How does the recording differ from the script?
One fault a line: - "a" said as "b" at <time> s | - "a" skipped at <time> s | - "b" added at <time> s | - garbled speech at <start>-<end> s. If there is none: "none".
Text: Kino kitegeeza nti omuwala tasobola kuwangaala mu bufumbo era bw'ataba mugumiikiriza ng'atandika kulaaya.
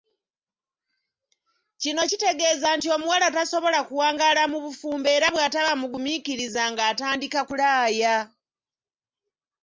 none